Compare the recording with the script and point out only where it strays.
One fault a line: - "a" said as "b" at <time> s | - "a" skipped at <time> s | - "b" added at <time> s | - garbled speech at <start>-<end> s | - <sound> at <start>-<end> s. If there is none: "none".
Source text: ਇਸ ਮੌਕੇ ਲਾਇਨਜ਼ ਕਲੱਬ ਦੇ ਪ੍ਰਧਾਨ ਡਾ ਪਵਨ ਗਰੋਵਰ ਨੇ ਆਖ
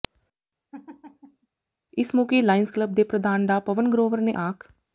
- laugh at 0.7-1.5 s